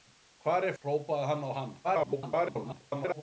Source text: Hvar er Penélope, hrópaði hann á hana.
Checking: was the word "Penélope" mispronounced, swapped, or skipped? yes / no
yes